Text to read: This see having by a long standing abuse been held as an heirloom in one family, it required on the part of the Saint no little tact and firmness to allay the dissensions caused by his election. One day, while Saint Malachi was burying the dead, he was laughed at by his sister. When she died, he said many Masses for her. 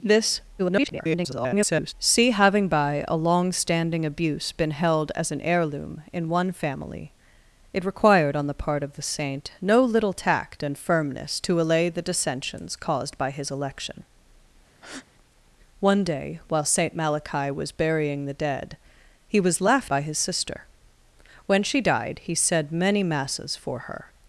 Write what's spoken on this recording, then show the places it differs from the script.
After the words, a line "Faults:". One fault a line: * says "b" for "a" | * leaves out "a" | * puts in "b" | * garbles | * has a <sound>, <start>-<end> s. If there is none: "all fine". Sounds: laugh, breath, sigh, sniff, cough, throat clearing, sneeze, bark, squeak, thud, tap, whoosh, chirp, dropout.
This [garbled] see having by a long standing abuse been held as an heirloom in one family, it required on the part of the Saint no little tact and firmness to allay the dissensions caused by his election. One day, while Saint Malachi was burying the dead, he was laughed by his sister. When she died, he said many Masses for her.
Faults:
* garbles
* has a breath, 14.7-15.1 s
* leaves out "at"